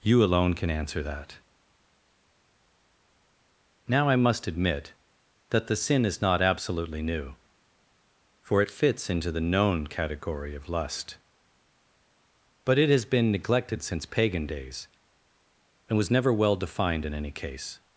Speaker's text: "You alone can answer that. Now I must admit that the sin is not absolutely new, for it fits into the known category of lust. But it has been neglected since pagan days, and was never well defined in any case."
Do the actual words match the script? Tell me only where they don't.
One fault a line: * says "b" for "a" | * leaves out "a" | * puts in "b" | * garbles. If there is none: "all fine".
all fine